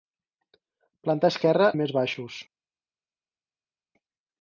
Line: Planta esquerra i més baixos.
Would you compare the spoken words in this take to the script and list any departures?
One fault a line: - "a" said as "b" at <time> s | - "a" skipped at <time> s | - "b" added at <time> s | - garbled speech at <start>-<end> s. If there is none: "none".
none